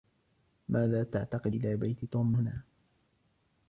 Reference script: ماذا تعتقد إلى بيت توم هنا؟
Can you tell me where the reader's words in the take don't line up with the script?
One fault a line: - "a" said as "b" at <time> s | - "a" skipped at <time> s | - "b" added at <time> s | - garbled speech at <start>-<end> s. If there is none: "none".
none